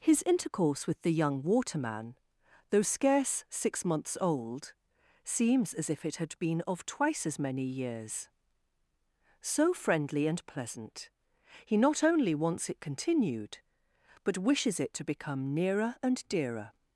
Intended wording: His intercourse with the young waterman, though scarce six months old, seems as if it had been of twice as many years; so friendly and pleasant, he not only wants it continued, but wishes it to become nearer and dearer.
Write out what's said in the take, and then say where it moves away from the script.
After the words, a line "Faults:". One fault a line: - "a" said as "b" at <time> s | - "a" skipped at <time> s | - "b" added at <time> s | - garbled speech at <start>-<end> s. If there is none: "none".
His intercourse with the young waterman, though scarce six months old, seems as if it had been of twice as many years; so friendly and pleasant, he not only wants it continued, but wishes it to become nearer and dearer.
Faults:
none